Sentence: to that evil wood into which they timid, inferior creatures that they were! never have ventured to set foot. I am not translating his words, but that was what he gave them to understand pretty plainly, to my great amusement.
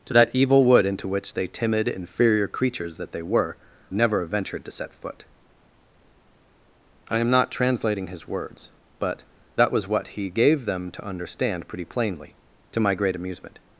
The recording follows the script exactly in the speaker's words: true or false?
true